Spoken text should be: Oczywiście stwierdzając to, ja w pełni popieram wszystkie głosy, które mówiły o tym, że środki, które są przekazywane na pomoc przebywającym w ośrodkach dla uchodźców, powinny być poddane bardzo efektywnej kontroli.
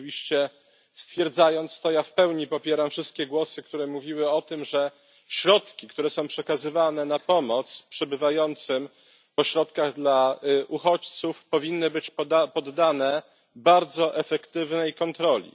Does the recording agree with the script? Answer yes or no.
yes